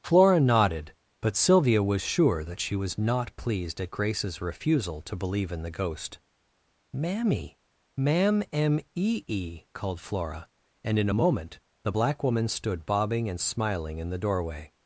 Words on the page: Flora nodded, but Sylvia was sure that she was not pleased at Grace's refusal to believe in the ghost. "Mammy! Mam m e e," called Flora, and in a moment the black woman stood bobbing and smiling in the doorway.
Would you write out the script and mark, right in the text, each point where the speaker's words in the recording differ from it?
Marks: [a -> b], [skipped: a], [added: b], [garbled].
Flora nodded, but Sylvia was sure that she was not pleased at Grace's refusal to believe in the ghost. "Mammy! Mam m e e," called Flora, and in a moment the black woman stood bobbing and smiling in the doorway.